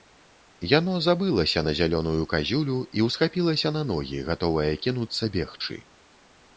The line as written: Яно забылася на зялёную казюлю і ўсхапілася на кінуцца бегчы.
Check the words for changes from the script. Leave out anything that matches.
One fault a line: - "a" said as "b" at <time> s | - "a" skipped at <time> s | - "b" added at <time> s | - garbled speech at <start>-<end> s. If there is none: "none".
- "ногі гатовае" added at 3.9 s